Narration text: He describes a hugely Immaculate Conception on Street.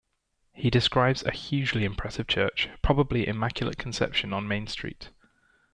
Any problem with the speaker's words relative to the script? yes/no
yes